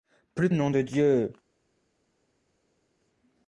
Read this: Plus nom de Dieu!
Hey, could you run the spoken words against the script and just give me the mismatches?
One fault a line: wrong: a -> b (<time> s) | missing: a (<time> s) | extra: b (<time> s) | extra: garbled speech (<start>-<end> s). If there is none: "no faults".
no faults